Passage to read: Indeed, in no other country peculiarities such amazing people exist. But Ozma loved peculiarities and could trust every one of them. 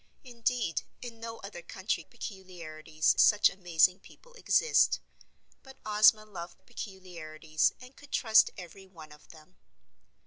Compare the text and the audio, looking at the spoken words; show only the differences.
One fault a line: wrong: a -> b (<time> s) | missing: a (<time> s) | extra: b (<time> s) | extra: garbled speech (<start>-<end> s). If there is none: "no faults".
no faults